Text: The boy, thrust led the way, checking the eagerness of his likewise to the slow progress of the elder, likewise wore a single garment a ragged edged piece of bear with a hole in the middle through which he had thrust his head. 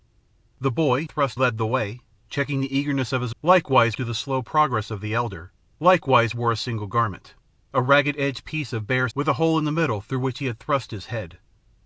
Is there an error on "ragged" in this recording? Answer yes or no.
no